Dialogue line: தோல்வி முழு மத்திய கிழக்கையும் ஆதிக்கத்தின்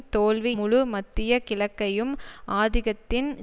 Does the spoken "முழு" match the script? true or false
true